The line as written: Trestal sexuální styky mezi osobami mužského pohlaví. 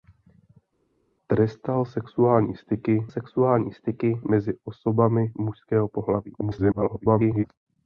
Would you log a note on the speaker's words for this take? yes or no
yes